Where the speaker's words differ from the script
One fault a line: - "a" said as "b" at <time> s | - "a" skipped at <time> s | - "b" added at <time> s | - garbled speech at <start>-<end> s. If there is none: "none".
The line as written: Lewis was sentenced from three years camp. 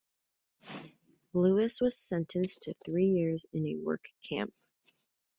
- "from" said as "to" at 2.6 s
- "in a work" added at 3.5 s